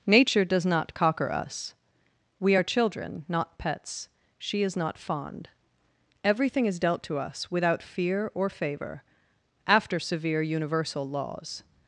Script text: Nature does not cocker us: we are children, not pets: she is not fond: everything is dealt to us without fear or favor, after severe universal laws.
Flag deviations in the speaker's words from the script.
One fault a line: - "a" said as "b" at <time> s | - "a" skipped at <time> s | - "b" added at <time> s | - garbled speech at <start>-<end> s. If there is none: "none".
none